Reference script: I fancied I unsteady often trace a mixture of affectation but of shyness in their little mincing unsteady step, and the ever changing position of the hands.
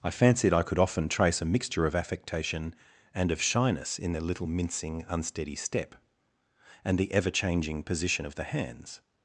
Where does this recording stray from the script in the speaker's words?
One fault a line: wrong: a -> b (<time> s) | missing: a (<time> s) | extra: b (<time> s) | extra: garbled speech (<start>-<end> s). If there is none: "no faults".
wrong: unsteady -> could (0.6 s)
wrong: but -> and (3.1 s)